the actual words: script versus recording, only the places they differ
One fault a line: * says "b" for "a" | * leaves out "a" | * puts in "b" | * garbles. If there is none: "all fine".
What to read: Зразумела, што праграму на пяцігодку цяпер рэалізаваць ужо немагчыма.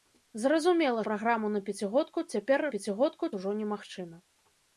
* leaves out "што"
* says "пяцігодку" for "рэалізаваць"